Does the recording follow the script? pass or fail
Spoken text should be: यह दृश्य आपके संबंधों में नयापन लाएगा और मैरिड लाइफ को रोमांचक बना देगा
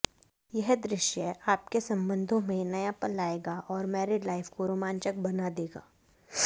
pass